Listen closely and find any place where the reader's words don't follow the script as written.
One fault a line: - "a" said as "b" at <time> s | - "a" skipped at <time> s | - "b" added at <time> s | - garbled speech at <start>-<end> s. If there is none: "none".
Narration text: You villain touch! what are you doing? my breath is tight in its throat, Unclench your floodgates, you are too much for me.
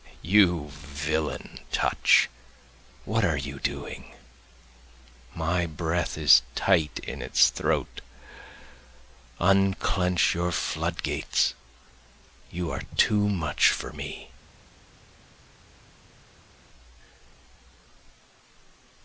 none